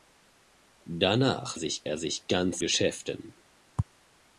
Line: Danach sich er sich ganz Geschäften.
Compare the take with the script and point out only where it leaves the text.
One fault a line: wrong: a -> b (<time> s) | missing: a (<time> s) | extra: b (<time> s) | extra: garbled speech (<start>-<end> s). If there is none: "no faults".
no faults